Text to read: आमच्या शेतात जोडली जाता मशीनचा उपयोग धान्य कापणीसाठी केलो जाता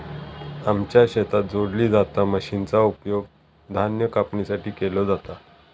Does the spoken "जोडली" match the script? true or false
true